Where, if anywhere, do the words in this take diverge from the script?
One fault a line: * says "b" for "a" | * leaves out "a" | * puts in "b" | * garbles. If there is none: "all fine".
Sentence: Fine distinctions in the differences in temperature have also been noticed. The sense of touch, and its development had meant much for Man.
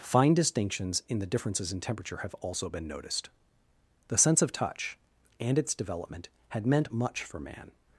all fine